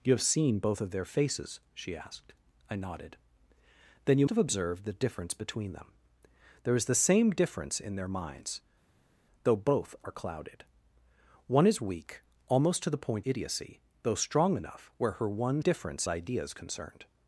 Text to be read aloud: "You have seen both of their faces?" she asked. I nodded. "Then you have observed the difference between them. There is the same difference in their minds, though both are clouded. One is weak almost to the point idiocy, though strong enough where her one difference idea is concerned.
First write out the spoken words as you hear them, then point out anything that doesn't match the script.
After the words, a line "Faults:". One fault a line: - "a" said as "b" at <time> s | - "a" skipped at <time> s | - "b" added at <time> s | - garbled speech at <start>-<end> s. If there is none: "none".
"You have seen both of their faces?" she asked. I nodded. "Then you have observed the difference between them. There is the same difference in their minds, though both are clouded. One is weak almost to the point idiocy, though strong enough where her one difference idea is concerned.
Faults:
none